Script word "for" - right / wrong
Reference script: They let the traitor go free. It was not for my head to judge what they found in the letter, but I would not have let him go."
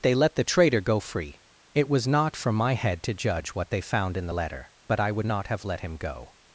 right